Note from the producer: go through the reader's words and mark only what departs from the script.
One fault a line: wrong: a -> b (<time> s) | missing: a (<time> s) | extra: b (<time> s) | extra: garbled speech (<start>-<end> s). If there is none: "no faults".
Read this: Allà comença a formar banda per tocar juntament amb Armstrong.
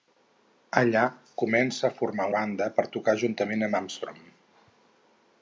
no faults